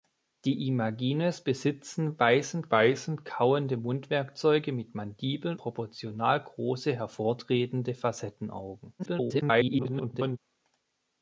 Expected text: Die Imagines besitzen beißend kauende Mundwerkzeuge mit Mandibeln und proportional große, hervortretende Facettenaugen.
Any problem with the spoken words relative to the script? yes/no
yes